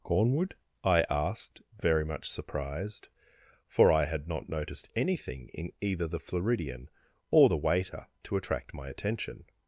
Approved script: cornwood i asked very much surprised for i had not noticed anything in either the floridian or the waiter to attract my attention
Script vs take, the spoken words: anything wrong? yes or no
no